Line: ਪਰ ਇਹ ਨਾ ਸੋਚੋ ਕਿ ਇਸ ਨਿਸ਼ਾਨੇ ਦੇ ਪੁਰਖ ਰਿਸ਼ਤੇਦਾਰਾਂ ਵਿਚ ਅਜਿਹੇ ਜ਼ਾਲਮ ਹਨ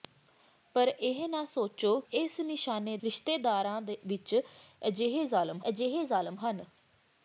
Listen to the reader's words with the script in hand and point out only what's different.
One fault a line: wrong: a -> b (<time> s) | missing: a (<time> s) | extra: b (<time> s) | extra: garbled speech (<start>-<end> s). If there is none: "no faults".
missing: ਕਿ (2.0 s)
wrong: ਦੇ ਪੁਰਖ ਰਿਸ਼ਤੇਦਾਰਾਂ ਵਿਚ -> ਰਿਸ਼ਤੇਦਾਰਾਂ ਵਿਚ ਅਜਿਹੇ ਜ਼ਾਲਮ (3.0 s)